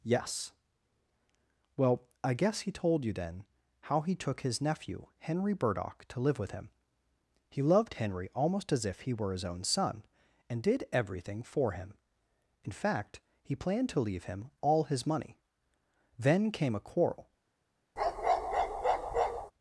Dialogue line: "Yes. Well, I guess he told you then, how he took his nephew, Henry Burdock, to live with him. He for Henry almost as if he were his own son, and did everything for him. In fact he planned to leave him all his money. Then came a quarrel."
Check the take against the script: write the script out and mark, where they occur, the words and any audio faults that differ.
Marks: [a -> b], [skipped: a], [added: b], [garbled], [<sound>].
"Yes. Well, I guess he told you then, how he took his nephew, Henry Burdock, to live with him. He [for -> loved] Henry almost as if he were his own son, and did everything for him. In fact he planned to leave him all his money. Then came a quarrel." [bark]